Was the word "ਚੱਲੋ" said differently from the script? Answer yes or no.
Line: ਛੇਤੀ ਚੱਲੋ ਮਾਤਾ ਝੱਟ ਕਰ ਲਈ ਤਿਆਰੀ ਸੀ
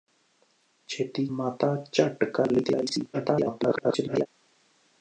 yes